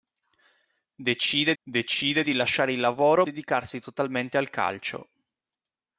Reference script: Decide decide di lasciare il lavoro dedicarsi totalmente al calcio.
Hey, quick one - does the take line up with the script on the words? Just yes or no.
yes